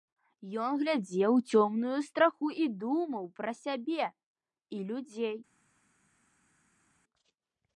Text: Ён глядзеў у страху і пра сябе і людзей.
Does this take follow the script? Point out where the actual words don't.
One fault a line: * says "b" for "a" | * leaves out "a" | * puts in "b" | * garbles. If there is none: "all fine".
* puts in "цёмную"
* puts in "думаў"